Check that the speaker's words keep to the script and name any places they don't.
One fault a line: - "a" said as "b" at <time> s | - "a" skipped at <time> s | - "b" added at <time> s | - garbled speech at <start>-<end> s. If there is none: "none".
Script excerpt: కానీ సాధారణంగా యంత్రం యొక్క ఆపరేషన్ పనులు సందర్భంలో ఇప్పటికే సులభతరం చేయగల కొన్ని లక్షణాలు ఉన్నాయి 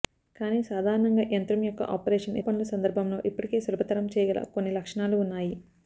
none